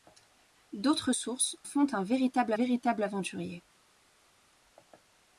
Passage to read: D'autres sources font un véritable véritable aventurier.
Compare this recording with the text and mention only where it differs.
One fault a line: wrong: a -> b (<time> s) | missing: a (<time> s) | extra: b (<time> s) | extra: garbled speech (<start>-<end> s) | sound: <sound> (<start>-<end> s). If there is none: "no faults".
no faults